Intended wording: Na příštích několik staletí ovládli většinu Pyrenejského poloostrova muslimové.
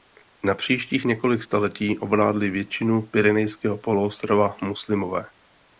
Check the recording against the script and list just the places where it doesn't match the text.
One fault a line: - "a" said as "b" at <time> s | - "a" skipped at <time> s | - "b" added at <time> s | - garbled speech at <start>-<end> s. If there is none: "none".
none